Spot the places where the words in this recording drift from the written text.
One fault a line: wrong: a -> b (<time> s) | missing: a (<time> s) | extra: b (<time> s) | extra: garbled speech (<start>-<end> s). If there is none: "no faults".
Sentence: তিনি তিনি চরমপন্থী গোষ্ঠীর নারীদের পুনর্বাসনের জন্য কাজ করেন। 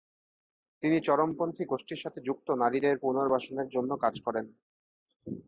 missing: তিনি (1.0 s)
extra: সাথে যুক্ত (2.0 s)